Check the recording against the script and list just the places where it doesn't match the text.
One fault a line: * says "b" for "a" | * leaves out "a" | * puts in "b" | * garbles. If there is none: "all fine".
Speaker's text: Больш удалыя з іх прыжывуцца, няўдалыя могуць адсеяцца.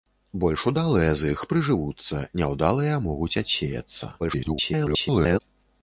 * garbles